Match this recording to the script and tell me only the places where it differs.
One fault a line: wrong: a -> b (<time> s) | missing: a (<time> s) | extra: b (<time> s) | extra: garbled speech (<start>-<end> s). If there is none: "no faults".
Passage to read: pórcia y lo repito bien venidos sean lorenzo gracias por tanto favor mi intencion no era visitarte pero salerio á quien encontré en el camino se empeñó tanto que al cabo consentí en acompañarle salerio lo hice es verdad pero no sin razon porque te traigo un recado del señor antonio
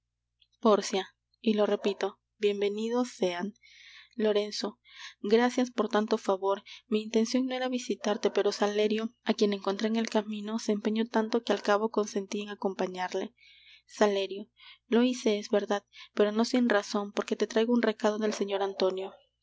no faults